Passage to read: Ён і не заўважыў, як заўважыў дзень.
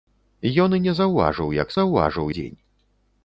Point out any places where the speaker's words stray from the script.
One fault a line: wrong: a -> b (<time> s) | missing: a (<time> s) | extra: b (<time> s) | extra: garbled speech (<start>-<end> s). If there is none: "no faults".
no faults